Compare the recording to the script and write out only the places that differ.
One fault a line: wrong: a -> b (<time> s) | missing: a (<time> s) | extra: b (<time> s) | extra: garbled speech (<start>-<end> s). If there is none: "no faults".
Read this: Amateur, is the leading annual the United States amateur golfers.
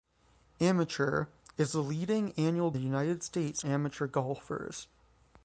no faults